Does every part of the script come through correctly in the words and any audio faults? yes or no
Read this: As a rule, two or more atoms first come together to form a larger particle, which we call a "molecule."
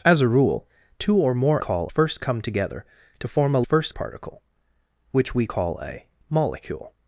no